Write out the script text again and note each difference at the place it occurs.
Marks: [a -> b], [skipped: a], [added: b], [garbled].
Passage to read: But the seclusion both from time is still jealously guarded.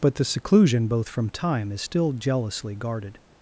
But the seclusion both from time is still jealously guarded.